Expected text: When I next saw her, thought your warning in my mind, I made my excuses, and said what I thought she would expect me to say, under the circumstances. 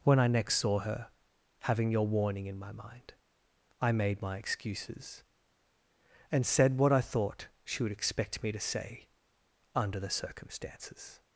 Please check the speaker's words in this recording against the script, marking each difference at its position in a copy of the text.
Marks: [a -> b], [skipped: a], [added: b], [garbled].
When I next saw her, [thought -> having] your warning in my mind, I made my excuses, and said what I thought she would expect me to say, under the circumstances.